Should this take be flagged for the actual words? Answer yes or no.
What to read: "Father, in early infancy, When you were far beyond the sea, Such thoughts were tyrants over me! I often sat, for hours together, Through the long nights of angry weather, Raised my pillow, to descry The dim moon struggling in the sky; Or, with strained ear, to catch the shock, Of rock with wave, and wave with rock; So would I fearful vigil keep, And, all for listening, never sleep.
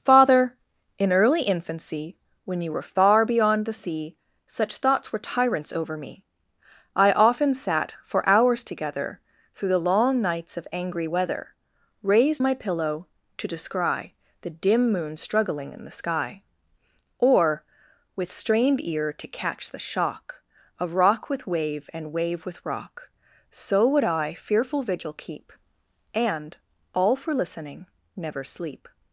no